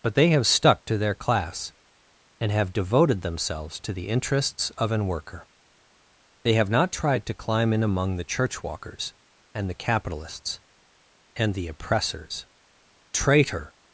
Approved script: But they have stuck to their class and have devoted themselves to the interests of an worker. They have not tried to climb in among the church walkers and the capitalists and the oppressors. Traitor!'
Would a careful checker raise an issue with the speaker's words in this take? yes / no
no